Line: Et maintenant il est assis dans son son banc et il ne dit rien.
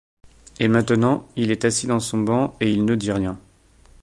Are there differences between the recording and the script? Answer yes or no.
yes